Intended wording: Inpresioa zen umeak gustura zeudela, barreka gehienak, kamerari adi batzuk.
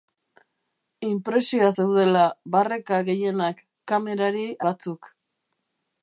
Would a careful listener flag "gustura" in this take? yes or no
yes